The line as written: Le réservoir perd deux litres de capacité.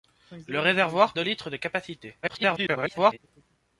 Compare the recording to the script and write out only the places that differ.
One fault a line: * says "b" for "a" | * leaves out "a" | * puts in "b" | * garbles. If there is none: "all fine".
* leaves out "perd"
* garbles